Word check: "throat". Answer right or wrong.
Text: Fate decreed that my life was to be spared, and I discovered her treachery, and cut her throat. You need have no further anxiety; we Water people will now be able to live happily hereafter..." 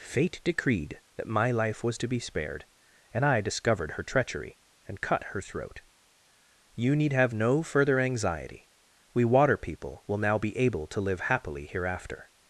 right